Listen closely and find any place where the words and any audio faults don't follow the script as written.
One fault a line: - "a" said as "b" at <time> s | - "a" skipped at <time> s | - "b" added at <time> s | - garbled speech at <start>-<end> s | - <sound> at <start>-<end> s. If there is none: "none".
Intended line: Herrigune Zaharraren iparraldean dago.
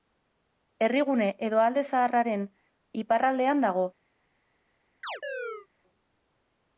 - "edo Alde" added at 1.5 s
- chirp at 5.0-5.7 s